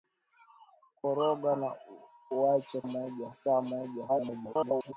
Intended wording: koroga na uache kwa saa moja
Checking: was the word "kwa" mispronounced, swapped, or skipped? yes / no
yes